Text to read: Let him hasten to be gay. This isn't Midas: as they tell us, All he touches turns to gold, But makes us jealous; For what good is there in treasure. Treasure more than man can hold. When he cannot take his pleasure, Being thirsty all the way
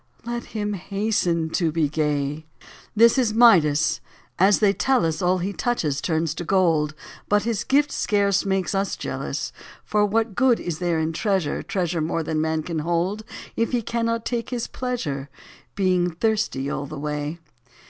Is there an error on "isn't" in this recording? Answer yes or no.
yes